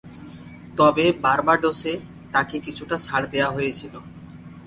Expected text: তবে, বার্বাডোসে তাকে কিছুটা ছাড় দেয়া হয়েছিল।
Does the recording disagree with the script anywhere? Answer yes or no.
no